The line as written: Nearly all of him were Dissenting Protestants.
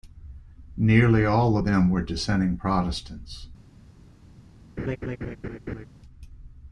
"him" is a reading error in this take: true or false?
true